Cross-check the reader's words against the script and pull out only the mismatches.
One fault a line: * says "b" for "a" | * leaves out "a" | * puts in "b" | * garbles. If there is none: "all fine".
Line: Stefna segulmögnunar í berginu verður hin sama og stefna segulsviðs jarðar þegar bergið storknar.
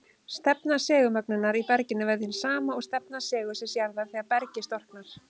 all fine